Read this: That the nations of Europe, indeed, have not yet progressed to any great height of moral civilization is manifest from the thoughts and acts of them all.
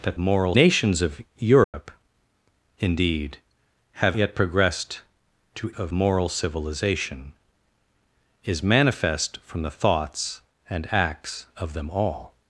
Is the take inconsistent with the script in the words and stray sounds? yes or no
yes